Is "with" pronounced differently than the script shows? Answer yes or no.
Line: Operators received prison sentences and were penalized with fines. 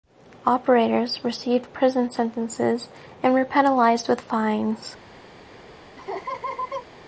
no